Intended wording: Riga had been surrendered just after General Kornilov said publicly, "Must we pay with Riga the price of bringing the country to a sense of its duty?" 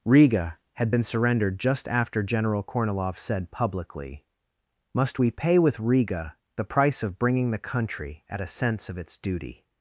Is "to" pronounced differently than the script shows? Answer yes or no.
yes